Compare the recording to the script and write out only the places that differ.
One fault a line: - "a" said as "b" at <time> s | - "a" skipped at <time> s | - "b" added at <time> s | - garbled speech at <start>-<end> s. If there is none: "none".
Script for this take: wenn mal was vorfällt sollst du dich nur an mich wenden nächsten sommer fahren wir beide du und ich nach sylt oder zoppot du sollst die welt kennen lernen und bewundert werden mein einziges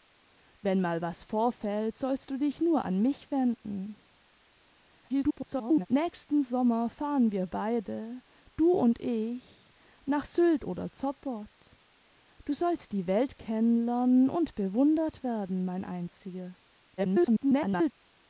- garbled speech at 5.1-5.9 s
- garbled speech at 17.0-17.9 s